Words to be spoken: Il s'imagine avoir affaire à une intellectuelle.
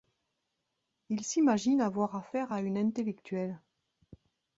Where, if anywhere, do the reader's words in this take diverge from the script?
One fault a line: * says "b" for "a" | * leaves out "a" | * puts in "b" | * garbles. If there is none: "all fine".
all fine